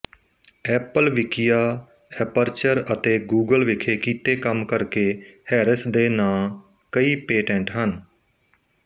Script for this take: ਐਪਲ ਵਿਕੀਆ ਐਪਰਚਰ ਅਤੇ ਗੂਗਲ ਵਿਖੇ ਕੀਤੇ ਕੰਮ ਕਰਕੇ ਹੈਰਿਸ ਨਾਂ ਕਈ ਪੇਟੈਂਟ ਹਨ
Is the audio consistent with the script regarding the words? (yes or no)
no